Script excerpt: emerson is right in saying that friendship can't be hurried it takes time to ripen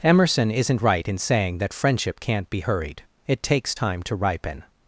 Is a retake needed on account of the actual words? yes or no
yes